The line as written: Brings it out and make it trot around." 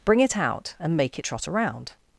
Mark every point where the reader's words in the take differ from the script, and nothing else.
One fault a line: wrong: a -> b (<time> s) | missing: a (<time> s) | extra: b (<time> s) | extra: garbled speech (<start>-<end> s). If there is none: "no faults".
wrong: Brings -> Bring (0.0 s)